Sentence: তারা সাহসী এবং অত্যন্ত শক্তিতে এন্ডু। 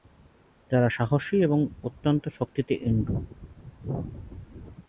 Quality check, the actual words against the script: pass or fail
pass